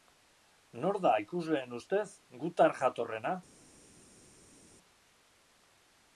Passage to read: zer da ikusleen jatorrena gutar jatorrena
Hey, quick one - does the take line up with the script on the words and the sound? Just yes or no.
no